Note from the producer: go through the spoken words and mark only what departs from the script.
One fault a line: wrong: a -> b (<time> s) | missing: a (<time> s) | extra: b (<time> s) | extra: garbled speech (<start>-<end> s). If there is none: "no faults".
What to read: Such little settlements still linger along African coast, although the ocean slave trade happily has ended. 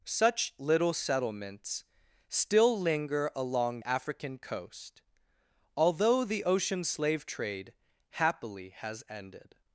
no faults